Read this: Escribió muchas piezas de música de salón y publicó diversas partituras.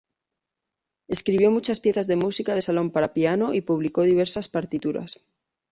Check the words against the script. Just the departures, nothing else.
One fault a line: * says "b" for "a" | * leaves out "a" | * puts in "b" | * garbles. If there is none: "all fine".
* puts in "para piano"